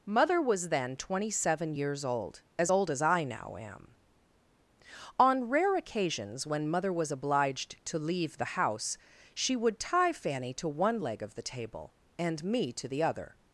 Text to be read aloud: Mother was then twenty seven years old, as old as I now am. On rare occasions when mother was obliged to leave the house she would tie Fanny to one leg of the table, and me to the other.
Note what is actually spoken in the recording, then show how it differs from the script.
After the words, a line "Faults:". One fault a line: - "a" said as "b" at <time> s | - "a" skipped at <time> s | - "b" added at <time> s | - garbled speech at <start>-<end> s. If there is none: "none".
Mother was then twenty seven years old, as old as I now am. On rare occasions when mother was obliged to leave the house she would tie Fanny to one leg of the table, and me to the other.
Faults:
none